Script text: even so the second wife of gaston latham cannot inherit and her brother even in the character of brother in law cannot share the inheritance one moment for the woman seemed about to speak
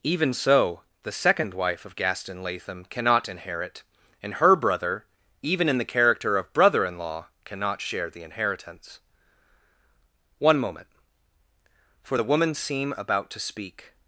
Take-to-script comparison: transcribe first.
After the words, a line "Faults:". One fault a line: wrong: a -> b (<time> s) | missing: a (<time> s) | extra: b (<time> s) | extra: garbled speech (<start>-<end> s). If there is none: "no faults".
even so the second wife of gaston latham cannot inherit and her brother even in the character of brother in law cannot share the inheritance one moment for the woman seem about to speak
Faults:
wrong: seemed -> seem (12.5 s)